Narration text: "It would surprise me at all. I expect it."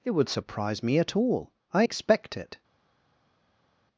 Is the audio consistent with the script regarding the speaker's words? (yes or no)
yes